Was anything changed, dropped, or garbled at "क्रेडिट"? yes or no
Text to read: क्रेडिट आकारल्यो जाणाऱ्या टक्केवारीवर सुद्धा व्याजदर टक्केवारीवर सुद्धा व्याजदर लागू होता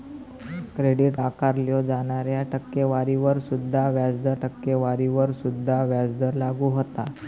no